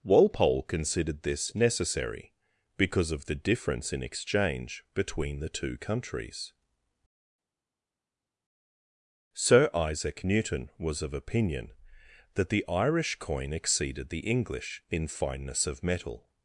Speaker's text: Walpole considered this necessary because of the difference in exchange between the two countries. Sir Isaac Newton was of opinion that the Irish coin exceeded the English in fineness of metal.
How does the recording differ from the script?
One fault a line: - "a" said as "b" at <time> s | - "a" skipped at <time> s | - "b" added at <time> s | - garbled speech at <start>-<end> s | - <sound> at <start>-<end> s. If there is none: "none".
none